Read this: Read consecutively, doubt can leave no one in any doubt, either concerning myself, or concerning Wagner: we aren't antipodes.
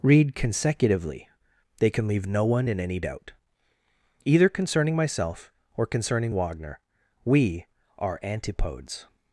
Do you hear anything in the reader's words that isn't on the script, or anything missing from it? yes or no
yes